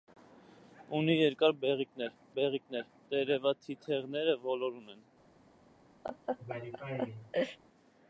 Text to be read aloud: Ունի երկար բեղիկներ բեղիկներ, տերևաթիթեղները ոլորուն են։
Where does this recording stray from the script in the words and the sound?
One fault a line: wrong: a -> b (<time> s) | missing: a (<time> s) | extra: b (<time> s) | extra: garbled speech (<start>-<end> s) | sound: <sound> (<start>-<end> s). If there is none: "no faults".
sound: laugh (6.0-7.6 s)